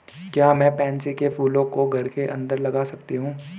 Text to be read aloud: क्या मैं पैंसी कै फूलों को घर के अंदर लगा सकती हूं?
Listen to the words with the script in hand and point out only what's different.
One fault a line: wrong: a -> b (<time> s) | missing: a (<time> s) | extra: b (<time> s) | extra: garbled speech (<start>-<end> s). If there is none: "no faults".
no faults